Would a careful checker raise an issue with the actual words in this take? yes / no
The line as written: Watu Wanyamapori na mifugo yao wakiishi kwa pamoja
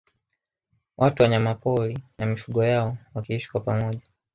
no